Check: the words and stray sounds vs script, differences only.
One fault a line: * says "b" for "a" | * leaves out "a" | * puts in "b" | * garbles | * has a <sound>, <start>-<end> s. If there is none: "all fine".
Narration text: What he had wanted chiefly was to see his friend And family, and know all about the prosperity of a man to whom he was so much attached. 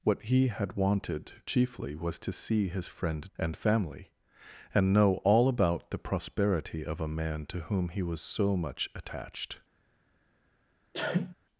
* has a sneeze, 10.9-11.3 s